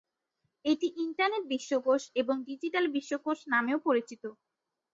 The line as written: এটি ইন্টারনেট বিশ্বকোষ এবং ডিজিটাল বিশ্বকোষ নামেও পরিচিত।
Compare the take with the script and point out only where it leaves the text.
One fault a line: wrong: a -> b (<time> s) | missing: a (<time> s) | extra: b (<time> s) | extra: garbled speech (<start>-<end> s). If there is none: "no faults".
no faults